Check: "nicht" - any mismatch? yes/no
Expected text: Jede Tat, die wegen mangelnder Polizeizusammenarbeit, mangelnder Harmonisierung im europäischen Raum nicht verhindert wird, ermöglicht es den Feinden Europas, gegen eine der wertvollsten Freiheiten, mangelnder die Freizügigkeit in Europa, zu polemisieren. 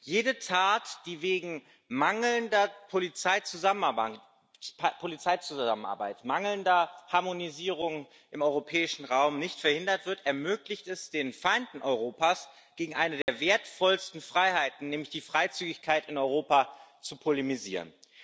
no